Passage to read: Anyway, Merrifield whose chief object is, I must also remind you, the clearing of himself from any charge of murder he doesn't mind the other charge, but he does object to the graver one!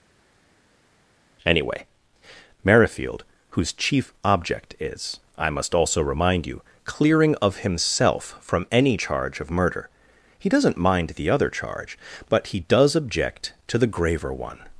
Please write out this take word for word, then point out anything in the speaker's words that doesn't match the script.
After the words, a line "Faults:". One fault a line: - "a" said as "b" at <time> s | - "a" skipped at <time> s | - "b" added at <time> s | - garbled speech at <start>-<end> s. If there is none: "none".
Anyway, Merrifield whose chief object is, I must also remind you, clearing of himself from any charge of murder he doesn't mind the other charge, but he does object to the graver one!
Faults:
- "the" skipped at 6.6 s